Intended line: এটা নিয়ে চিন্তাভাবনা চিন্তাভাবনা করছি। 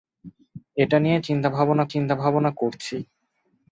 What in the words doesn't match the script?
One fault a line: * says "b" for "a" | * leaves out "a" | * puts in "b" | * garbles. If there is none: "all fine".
all fine